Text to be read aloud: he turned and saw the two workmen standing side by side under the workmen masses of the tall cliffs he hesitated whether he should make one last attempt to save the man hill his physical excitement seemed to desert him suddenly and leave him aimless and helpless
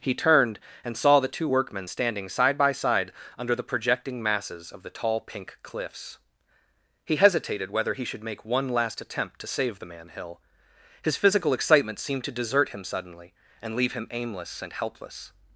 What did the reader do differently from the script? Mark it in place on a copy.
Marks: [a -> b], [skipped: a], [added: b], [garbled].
he turned and saw the two workmen standing side by side under the [workmen -> projecting] masses of the tall [added: pink] cliffs he hesitated whether he should make one last attempt to save the man hill his physical excitement seemed to desert him suddenly and leave him aimless and helpless